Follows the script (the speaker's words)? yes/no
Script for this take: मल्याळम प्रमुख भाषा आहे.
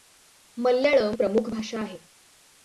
yes